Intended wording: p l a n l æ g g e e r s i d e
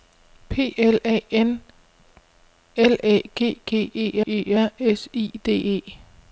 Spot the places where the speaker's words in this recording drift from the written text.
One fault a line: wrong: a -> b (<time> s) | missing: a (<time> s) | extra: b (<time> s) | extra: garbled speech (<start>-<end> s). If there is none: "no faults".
no faults